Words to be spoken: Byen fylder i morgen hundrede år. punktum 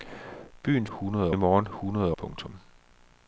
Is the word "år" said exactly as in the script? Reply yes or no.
no